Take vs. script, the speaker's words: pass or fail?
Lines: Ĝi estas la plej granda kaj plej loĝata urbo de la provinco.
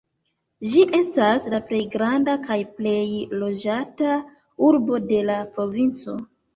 pass